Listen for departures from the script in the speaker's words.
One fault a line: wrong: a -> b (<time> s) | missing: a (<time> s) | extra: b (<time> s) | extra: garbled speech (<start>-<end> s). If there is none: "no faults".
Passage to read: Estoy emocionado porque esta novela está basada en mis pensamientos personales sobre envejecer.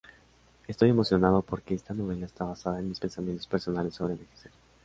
no faults